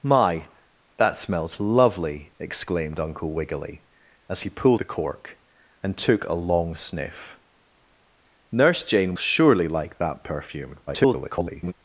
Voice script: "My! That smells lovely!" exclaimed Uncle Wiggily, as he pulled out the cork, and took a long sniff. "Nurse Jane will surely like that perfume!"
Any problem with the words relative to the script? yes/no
yes